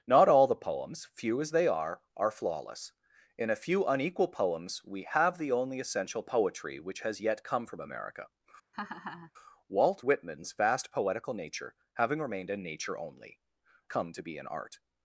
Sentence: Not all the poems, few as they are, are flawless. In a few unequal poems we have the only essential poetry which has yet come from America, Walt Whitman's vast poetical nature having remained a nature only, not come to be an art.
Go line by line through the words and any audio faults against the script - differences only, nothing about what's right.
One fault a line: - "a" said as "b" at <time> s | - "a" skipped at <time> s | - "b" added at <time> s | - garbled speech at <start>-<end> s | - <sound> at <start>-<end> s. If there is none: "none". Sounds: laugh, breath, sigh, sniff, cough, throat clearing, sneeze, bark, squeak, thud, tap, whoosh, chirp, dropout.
- laugh at 8.7-9.3 s
- "not" skipped at 13.4 s